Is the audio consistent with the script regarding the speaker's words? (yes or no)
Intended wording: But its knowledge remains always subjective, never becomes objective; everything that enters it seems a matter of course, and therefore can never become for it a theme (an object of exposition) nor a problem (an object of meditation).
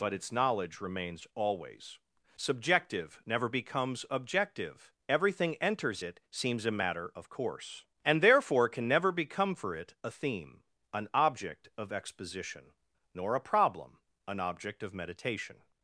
no